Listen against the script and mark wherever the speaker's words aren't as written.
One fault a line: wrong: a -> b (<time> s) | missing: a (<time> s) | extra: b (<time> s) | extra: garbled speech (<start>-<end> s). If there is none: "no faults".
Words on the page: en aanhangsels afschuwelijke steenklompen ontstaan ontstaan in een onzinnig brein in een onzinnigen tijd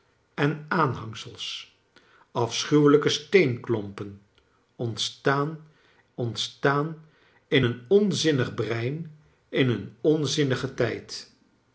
no faults